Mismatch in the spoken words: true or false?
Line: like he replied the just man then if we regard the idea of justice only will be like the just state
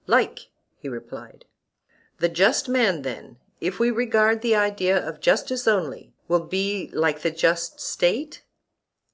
false